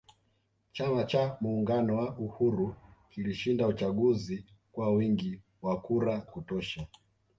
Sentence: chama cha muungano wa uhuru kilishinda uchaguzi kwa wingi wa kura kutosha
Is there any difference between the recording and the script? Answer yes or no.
no